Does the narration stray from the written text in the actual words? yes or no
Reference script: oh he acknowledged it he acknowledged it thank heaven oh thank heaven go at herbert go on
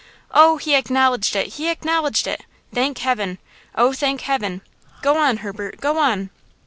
yes